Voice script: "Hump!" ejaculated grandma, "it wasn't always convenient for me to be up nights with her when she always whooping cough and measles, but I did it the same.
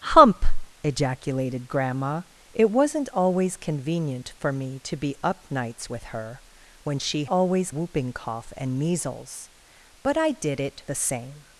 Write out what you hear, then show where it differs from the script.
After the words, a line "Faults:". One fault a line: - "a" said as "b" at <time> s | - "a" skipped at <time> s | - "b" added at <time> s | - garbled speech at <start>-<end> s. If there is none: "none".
"Hump!" ejaculated grandma, "it wasn't always convenient for me to be up nights with her when she always whooping cough and measles, but I did it the same.
Faults:
none